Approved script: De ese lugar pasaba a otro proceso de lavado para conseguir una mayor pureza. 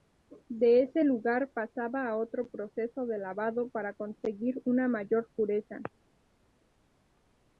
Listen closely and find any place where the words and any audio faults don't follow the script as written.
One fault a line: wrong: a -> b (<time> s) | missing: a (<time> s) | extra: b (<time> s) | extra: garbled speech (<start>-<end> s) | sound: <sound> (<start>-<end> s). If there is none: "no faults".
no faults